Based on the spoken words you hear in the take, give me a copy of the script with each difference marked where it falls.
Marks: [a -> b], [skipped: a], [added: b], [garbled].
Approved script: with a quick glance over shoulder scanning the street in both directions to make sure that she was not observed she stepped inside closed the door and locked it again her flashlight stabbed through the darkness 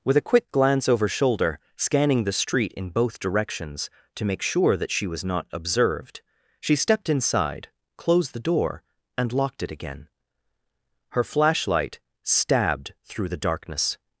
with a quick glance over shoulder scanning the street in both directions to make sure that she was not observed she stepped inside closed the door and locked it again her flashlight stabbed through the darkness